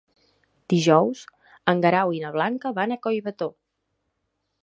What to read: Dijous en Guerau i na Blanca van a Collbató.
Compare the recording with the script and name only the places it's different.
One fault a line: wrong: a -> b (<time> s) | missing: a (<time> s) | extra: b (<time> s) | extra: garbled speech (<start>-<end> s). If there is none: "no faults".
no faults